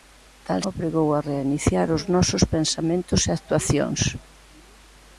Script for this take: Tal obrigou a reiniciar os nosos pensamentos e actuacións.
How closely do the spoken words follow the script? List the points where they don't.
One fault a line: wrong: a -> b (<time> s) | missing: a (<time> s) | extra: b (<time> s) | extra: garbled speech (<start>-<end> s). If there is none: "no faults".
no faults